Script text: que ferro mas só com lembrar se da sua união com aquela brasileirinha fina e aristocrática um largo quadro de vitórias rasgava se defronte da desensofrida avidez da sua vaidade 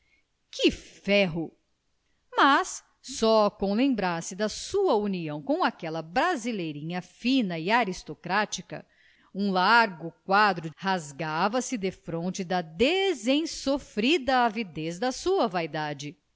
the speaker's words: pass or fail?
fail